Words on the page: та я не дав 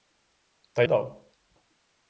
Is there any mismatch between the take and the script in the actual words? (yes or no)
yes